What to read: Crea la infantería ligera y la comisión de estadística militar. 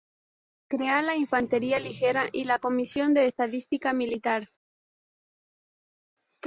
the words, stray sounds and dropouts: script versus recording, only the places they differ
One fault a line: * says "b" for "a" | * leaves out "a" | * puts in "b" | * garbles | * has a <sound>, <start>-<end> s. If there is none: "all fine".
all fine